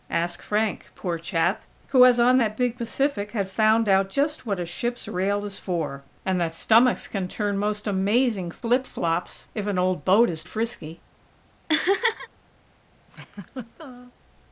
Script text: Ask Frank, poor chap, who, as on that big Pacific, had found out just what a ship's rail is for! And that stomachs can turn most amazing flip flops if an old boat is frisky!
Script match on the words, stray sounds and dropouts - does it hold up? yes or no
no